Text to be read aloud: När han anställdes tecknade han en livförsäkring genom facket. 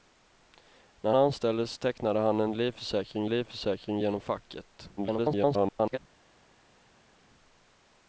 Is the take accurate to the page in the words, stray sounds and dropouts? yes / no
no